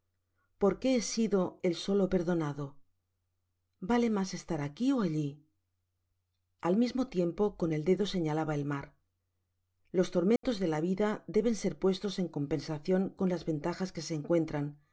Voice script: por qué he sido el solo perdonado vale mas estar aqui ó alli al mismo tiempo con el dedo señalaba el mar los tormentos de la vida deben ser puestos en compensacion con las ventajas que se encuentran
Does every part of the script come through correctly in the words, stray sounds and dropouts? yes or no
no